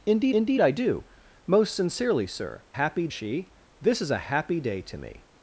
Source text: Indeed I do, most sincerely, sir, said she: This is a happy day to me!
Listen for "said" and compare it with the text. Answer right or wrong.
wrong